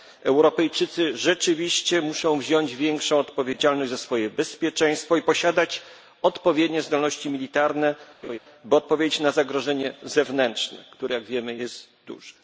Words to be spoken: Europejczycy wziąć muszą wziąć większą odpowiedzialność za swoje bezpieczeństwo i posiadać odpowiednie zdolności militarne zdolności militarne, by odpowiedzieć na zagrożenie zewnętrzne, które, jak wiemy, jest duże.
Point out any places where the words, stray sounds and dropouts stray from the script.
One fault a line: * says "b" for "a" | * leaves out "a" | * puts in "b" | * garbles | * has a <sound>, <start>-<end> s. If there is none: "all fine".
* says "rzeczywiście" for "wziąć"
* leaves out "zdolności militarne"
* has a laugh, 8.2-8.4 s